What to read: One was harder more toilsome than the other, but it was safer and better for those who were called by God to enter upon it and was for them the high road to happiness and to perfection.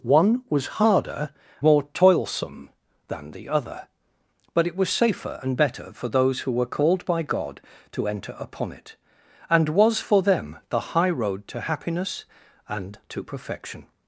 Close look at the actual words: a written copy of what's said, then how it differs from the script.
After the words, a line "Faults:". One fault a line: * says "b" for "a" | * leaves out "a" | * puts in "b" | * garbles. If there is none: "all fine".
One was harder more toilsome than the other, but it was safer and better for those who were called by God to enter upon it and was for them the high road to happiness and to perfection.
Faults:
all fine